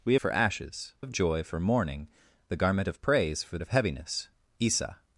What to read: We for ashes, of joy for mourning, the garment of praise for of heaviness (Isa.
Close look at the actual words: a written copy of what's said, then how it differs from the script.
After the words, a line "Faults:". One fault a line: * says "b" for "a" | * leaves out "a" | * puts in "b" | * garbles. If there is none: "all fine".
We for ashes, of joy for mourning, the garment of praise for of heaviness (Isa.
Faults:
all fine